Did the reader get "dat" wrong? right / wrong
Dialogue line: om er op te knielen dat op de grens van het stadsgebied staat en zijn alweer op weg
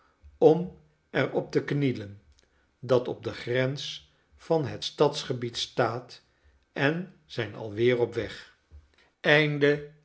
right